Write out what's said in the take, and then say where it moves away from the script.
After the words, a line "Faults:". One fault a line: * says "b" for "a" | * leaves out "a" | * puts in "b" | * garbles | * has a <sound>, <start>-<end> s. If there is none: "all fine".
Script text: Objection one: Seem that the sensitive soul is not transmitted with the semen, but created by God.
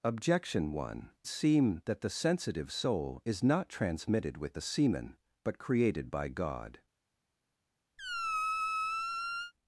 Objection one: Seem that the sensitive soul is not transmitted with the semen, but created by God.
Faults:
* has a squeak, 8.0-9.5 s